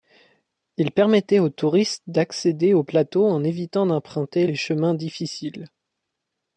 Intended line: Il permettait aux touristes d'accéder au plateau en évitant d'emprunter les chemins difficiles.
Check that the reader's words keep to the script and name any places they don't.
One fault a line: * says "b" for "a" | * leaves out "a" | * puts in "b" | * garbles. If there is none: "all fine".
all fine